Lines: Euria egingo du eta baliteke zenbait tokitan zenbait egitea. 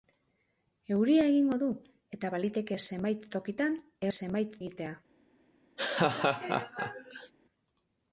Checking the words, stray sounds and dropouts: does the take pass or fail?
fail